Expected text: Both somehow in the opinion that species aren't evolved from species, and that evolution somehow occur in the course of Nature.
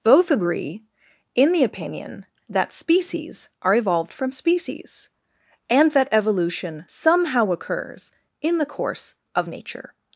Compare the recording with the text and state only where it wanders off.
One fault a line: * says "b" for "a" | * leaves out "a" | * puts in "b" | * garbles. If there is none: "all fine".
* says "agree" for "somehow"
* says "are" for "aren't"
* says "occurs" for "occur"